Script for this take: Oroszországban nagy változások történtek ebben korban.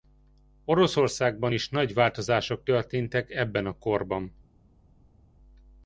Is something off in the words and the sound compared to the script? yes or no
yes